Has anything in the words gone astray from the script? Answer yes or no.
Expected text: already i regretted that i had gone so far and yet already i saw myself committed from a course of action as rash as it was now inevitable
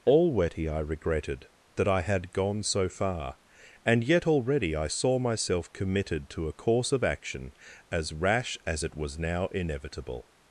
yes